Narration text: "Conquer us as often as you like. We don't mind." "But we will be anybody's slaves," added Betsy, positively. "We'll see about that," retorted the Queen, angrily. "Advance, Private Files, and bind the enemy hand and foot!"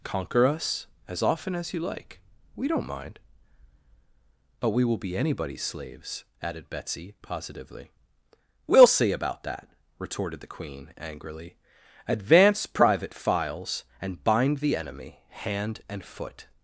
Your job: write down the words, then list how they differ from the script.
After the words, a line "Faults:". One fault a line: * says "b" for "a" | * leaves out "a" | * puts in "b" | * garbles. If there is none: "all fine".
"Conquer us as often as you like. We don't mind." "But we will be anybody's slaves," added Betsy, positively. "We'll see about that," retorted the Queen, angrily. "Advance, Private Files, and bind the enemy hand and foot!"
Faults:
all fine